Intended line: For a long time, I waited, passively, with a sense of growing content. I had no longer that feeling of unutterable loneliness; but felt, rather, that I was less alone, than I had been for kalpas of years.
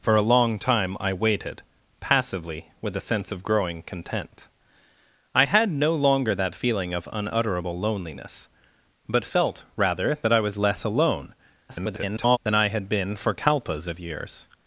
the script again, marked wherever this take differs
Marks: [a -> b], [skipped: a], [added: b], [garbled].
For a long time, I waited, passively, with a sense of growing content. I had no longer that feeling of unutterable loneliness; but felt, rather, that I was less alone, [garbled] than I had been for kalpas of years.